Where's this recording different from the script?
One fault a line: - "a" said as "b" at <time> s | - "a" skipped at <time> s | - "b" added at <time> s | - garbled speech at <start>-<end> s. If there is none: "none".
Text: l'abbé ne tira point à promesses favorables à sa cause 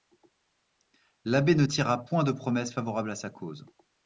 - "à" said as "de" at 2.2 s